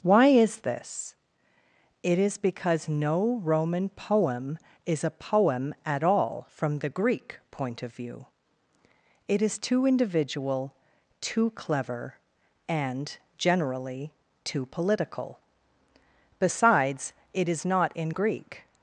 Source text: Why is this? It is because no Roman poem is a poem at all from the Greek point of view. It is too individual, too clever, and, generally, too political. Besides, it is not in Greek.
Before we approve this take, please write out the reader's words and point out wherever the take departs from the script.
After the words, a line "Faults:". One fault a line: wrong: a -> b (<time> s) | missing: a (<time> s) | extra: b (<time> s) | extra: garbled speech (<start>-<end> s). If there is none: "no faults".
Why is this? It is because no Roman poem is a poem at all from the Greek point of view. It is too individual, too clever, and, generally, too political. Besides, it is not in Greek.
Faults:
no faults